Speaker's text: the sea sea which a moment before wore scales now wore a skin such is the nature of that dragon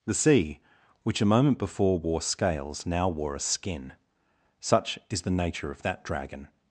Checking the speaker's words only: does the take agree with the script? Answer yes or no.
no